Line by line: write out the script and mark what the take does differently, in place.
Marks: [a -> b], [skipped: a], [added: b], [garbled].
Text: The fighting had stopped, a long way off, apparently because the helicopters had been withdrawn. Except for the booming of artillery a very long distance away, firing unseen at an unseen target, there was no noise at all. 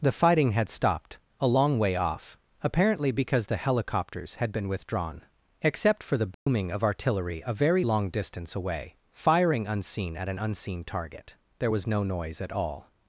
The fighting had stopped, a long way off, apparently because the helicopters had been withdrawn. Except for the booming of artillery a very long distance away, firing unseen at an unseen target, there was no noise at all.